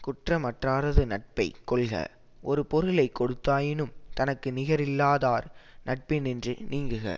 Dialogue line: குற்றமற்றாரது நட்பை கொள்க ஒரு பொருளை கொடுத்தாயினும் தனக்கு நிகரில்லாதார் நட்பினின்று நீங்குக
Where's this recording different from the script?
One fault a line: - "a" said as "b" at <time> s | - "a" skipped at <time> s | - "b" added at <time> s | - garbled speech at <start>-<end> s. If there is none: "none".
none